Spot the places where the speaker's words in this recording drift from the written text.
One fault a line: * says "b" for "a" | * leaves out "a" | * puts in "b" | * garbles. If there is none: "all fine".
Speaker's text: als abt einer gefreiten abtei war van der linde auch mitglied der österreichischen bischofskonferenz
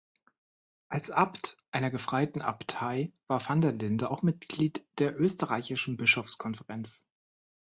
all fine